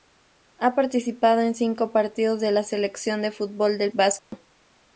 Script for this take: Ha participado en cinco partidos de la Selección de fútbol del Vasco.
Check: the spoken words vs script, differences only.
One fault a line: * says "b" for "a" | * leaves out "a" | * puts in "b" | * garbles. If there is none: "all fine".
all fine